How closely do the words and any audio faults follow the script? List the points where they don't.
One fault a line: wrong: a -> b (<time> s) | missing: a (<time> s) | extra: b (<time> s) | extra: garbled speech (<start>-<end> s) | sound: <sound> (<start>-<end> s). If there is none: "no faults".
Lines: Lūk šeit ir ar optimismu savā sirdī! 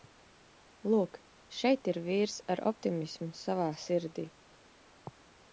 extra: vīrs (2.1 s)